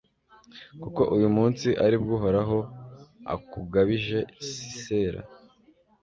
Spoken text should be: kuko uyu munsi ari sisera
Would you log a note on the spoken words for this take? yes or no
yes